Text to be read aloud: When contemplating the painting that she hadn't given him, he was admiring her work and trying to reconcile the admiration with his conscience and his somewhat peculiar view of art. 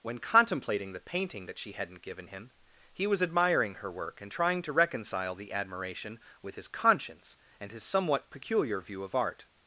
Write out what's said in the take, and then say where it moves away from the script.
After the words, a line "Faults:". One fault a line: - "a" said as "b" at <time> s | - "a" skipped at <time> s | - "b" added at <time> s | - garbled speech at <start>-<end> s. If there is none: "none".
When contemplating the painting that she hadn't given him, he was admiring her work and trying to reconcile the admiration with his conscience and his somewhat peculiar view of art.
Faults:
none